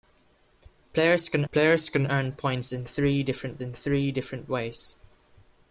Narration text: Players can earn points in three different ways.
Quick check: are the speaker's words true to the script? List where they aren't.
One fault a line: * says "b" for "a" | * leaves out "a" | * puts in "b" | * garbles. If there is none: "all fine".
* puts in "players can"
* puts in "in three different"